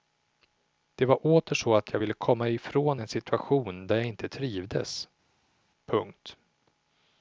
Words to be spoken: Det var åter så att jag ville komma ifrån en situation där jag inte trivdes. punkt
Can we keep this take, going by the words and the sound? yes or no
yes